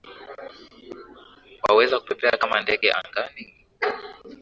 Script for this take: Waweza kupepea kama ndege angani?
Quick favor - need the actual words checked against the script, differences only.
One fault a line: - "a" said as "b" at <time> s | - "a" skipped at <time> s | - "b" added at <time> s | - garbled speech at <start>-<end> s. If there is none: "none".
none